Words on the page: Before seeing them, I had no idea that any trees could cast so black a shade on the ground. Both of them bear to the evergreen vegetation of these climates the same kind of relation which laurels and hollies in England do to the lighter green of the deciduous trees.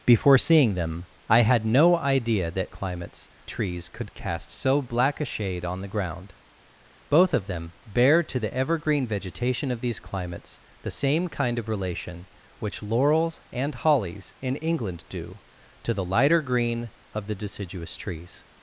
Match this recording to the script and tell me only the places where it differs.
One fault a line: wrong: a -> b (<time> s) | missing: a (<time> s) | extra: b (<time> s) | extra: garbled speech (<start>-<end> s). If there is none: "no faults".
wrong: any -> climates (2.7 s)